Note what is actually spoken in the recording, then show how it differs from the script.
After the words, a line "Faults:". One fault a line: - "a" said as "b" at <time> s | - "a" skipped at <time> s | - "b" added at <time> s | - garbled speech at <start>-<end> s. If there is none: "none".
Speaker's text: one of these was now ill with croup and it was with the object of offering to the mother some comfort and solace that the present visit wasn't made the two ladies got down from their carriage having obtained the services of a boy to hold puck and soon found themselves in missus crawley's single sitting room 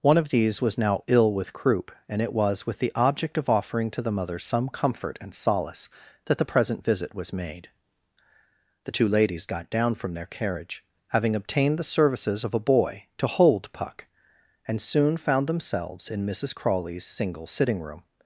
one of these was now ill with croup and it was with the object of offering to the mother some comfort and solace that the present visit was made the two ladies got down from their carriage having obtained the services of a boy to hold puck and soon found themselves in missus crawley's single sitting room
Faults:
- "wasn't" said as "was" at 7.2 s